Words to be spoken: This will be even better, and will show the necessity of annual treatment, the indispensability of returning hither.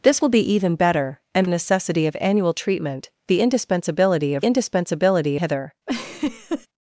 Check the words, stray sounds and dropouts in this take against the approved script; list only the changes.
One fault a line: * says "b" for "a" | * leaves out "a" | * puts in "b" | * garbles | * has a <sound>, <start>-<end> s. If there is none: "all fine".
* leaves out "will show the"
* says "indispensability" for "returning"
* has a laugh, 5.9-6.7 s